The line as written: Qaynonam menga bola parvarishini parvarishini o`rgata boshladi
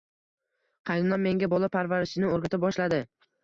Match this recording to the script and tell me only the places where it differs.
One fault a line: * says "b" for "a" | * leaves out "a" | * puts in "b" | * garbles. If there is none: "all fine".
* leaves out "parvarishini"